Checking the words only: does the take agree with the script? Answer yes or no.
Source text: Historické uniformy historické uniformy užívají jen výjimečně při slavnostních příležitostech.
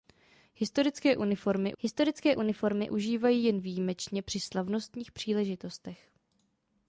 yes